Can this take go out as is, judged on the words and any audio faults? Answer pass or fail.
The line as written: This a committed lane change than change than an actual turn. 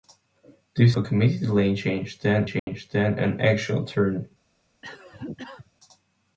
fail